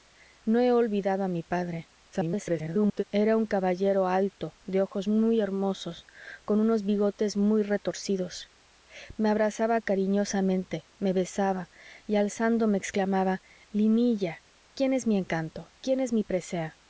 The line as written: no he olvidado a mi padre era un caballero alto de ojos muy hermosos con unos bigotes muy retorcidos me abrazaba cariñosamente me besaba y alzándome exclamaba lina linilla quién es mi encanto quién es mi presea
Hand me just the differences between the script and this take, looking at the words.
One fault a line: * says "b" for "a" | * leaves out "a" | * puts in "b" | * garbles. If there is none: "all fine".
* garbles
* leaves out "lina"